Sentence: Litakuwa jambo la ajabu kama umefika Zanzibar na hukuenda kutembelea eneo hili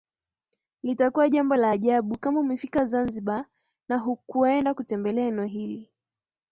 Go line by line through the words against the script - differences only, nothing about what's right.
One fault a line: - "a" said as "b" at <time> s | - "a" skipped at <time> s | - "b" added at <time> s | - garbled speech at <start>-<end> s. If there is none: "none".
none